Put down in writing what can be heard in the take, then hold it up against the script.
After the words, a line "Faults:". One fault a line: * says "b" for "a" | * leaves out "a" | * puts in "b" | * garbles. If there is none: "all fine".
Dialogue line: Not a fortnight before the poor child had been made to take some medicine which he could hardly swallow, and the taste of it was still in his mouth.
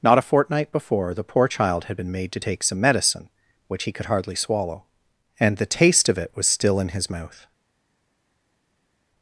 Not a fortnight before the poor child had been made to take some medicine which he could hardly swallow, and the taste of it was still in his mouth.
Faults:
all fine